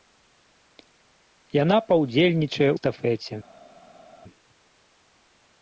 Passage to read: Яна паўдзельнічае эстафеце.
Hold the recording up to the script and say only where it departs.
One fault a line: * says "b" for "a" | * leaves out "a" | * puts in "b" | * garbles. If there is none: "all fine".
all fine